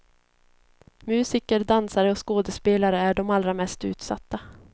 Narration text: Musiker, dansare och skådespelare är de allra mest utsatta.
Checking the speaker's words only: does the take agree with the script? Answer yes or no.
yes